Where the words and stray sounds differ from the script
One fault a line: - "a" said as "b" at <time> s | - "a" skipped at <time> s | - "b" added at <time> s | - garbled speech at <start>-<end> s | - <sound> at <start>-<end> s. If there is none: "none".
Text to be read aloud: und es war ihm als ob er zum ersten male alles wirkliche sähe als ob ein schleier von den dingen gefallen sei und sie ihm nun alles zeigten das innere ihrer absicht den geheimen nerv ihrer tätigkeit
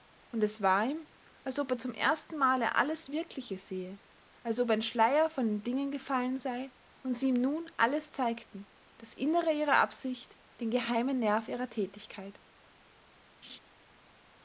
- laugh at 13.4-13.6 s